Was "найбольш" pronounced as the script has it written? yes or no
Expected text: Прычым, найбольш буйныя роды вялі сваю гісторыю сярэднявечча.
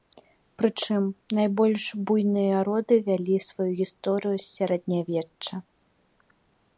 yes